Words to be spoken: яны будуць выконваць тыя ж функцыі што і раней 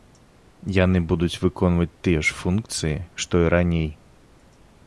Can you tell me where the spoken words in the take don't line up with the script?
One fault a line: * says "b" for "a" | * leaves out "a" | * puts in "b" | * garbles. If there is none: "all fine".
all fine